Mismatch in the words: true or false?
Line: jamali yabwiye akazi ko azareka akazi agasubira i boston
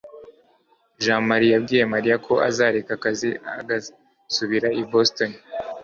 true